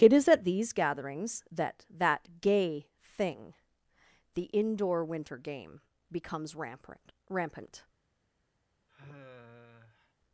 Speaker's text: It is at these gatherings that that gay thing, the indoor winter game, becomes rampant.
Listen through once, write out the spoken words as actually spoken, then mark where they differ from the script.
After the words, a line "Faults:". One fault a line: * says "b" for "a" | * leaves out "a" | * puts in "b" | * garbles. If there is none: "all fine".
It is at these gatherings that that gay thing, the indoor winter game, becomes rampant rampant.
Faults:
* puts in "rampant"